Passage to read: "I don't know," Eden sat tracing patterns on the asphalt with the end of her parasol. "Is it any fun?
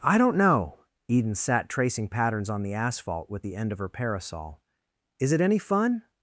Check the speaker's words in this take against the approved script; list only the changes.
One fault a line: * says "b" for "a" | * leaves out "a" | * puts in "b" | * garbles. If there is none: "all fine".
all fine